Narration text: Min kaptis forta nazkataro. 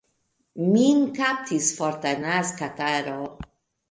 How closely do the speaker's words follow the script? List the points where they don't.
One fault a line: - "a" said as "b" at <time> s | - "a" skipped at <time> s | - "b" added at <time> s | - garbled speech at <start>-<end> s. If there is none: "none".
none